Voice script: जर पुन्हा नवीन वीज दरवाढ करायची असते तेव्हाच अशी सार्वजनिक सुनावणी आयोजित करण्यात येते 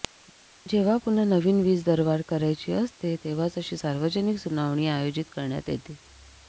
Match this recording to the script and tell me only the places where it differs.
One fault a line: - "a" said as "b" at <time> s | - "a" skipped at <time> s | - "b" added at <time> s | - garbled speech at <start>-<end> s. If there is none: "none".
- "जर" said as "जेव्हा" at 0.7 s